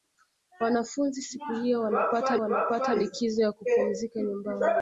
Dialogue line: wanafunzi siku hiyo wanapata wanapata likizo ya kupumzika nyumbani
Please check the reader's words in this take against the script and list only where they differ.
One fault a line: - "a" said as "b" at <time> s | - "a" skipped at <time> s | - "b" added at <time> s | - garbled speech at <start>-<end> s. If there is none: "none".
none